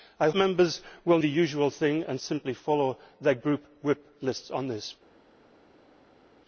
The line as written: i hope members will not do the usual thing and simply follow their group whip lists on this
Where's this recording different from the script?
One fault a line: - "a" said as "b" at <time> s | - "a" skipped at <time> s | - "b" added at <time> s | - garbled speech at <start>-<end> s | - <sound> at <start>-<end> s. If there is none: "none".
- "hope" skipped at 0.3 s
- "not do" skipped at 1.2 s